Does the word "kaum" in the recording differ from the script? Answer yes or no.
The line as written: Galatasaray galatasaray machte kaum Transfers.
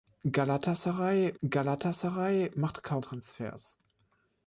no